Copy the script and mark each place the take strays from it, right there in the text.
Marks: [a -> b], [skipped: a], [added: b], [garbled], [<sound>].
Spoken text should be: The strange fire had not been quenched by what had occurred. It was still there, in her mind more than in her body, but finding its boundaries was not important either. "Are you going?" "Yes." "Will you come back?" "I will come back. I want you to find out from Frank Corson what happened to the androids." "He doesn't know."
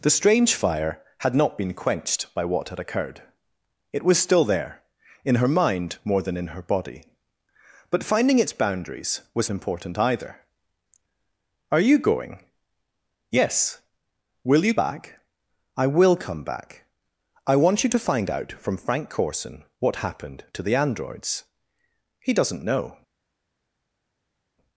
The strange fire had not been quenched by what had occurred. It was still there, in her mind more than in her body, but finding its boundaries was [skipped: not] important either. "Are you going?" "Yes." "Will you [skipped: come] back?" "I will come back. I want you to find out from Frank Corson what happened to the androids." "He doesn't know."